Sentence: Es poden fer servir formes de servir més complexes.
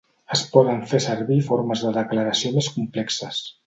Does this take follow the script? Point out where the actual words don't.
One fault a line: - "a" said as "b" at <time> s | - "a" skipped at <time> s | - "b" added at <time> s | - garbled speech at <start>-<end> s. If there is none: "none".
- "servir" said as "declaració" at 2.0 s